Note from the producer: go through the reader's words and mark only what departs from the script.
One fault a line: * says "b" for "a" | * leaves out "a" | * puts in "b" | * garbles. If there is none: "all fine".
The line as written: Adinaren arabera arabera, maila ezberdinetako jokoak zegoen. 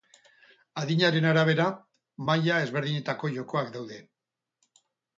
* leaves out "arabera"
* says "daude" for "zegoen"